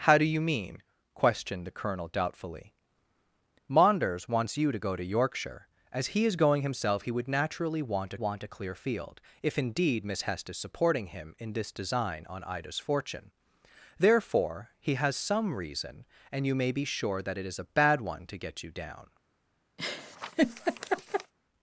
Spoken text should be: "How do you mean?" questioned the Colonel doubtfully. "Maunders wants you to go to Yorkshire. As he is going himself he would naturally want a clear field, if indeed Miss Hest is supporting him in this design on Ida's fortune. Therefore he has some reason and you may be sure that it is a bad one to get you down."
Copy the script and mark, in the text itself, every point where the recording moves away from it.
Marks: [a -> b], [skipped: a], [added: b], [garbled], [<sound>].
"How do you mean?" questioned the Colonel doubtfully. "Maunders wants you to go to Yorkshire. As he is going himself he would naturally want [added: want] a clear field, if indeed Miss Hest is supporting him in this design on Ida's fortune. Therefore he has some reason and you may be sure that it is a bad one to get you down." [laugh]